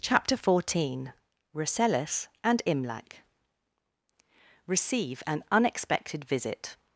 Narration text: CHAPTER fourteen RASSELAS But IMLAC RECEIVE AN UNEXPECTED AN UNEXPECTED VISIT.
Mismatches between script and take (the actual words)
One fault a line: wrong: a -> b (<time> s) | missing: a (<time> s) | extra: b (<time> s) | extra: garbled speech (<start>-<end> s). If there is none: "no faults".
wrong: But -> AND (2.4 s)
missing: AN UNEXPECTED (6.2 s)